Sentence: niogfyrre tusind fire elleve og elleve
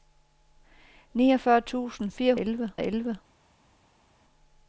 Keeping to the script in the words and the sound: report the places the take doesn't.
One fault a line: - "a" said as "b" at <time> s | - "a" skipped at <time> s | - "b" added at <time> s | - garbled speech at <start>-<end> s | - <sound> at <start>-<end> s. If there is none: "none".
none